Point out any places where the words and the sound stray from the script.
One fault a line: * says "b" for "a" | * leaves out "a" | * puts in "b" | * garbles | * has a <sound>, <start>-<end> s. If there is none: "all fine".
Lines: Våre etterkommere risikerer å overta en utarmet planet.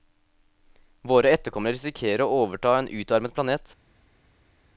all fine